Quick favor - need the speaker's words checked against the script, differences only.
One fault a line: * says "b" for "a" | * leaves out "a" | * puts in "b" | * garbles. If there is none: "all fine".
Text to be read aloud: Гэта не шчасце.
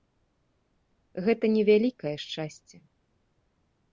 * puts in "вялікае"